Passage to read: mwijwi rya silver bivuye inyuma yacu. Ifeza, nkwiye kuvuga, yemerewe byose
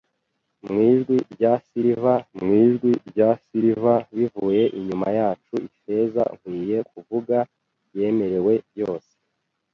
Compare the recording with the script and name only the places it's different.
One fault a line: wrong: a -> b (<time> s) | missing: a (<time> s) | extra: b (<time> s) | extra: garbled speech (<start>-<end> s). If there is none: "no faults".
extra: mwijwi rya silver (2.4 s)